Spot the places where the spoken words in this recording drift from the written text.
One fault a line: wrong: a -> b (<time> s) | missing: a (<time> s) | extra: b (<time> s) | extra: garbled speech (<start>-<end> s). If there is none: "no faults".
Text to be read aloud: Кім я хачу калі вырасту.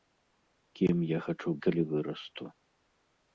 no faults